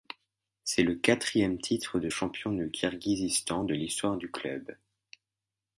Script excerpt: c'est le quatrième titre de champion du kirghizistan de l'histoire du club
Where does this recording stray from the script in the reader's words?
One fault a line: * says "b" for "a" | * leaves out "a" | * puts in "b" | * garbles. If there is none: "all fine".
all fine